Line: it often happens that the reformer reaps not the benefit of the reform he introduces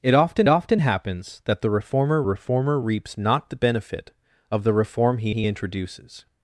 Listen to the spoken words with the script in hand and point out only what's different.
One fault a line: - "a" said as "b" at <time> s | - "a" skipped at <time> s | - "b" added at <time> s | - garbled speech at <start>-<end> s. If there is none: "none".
- "often" added at 0.5 s
- "reformer" added at 2.2 s
- "he" added at 5.3 s